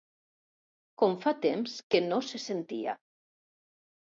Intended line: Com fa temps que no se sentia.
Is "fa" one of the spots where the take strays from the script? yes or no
no